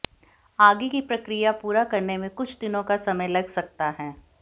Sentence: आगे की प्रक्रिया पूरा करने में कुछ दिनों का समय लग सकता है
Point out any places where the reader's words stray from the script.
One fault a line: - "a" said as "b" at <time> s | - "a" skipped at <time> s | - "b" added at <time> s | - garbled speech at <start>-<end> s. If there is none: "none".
none